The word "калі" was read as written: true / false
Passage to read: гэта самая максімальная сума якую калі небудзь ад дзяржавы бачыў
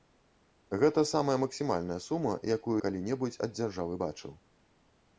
true